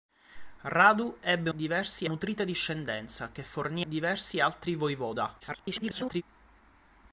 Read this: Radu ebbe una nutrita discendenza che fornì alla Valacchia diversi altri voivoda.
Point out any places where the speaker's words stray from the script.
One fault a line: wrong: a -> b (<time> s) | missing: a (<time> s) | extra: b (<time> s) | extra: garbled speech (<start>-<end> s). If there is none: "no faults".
wrong: una -> diversi (1.5 s)
missing: alla Valacchia (3.8 s)
extra: garbled speech (5.4-6.2 s)